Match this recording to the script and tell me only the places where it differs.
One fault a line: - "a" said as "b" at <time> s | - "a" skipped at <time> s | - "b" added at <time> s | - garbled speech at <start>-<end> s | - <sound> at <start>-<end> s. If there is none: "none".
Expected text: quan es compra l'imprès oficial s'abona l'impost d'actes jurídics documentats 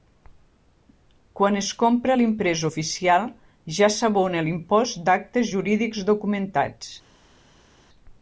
- "ja" added at 3.8 s